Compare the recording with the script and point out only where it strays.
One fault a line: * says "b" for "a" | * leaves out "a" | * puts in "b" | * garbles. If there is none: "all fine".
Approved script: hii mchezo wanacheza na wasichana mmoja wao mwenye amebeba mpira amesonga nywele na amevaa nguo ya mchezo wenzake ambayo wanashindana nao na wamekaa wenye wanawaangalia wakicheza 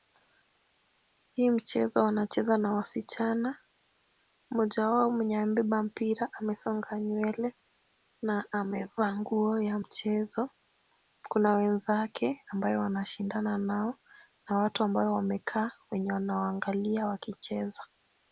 * puts in "kuna"
* puts in "watu ambao"